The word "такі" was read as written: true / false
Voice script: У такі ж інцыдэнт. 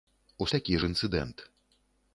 true